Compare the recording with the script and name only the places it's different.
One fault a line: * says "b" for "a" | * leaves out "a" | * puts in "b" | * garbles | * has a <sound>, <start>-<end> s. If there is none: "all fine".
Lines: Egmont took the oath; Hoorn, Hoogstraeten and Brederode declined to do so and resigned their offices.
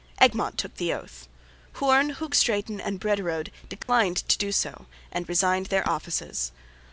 * has a dropout, 3.8-3.9 s